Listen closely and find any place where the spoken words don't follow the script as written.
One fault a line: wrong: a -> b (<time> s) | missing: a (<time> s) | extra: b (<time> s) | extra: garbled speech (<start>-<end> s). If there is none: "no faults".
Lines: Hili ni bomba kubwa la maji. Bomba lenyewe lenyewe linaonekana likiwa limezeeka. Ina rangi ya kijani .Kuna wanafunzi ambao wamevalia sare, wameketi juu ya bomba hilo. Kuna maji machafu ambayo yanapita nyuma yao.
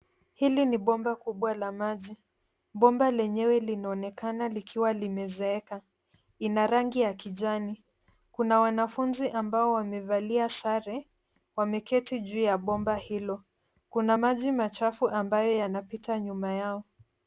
missing: lenyewe (3.6 s)